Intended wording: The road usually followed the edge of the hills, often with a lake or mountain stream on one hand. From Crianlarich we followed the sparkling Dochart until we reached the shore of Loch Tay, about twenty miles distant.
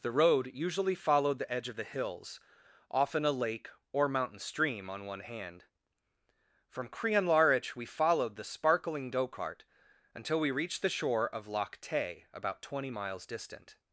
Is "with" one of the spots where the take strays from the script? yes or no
yes